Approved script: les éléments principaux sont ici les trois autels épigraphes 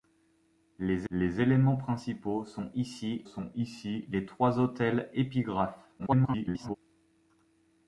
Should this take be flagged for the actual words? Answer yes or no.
yes